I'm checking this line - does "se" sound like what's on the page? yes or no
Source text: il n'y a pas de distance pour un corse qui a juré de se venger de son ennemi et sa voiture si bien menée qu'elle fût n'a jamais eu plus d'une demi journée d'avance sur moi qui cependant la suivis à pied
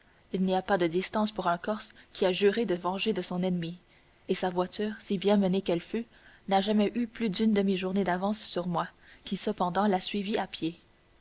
no